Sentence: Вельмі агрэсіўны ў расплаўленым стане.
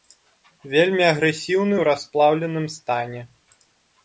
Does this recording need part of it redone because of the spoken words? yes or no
no